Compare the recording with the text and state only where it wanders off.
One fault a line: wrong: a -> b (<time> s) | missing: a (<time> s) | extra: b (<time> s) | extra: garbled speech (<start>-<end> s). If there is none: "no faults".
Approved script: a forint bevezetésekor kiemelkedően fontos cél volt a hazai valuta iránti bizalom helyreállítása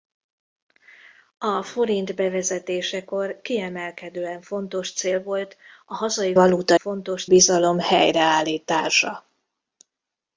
wrong: iránti -> fontos (6.8 s)